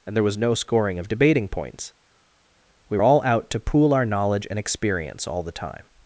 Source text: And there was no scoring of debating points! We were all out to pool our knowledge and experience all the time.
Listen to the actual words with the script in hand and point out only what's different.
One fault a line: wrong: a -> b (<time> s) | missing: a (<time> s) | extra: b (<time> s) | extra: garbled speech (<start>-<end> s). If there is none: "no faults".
missing: were (3.0 s)